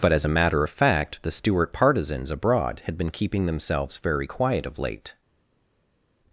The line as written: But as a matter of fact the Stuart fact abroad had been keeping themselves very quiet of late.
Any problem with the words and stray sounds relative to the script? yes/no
yes